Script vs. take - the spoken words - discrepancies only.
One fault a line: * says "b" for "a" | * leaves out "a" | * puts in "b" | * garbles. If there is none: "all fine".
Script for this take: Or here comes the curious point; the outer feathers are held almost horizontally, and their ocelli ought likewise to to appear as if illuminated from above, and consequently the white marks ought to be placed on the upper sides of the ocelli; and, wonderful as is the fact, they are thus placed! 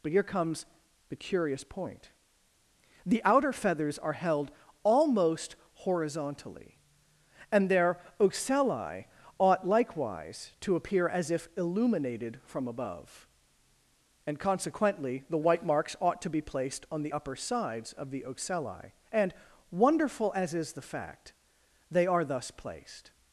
* says "But" for "Or"
* leaves out "to"